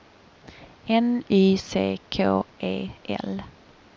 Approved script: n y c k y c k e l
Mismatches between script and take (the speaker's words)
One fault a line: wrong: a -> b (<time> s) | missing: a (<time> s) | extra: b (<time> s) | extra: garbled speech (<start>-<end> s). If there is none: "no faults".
missing: y c k (2.5 s)